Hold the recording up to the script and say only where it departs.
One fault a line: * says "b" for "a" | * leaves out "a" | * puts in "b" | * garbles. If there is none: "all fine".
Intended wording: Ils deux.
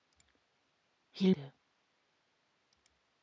all fine